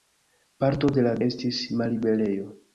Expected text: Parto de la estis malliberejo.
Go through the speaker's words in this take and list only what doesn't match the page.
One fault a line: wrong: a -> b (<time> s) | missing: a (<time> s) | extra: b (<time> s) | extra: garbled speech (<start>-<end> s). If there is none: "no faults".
no faults